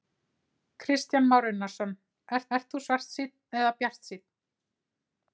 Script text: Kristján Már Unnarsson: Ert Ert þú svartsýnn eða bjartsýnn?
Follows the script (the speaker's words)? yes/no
yes